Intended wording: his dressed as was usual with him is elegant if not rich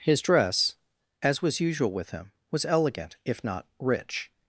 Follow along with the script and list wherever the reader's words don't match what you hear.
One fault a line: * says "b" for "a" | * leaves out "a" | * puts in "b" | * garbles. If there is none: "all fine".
* says "dress" for "dressed"
* says "was" for "is"